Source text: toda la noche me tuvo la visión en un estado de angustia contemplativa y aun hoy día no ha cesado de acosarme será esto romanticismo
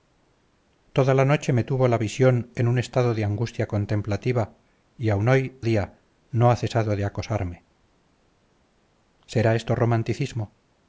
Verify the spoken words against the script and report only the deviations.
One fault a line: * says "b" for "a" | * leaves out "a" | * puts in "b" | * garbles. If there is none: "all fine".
all fine